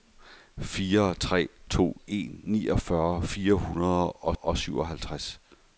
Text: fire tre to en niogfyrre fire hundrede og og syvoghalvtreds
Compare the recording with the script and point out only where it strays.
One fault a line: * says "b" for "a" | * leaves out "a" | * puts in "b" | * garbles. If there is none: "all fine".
all fine